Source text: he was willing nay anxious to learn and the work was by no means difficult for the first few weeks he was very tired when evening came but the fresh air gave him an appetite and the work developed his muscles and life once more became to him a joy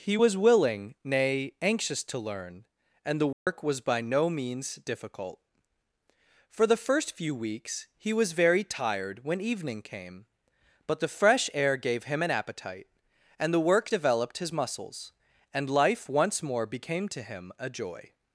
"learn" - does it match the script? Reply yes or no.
yes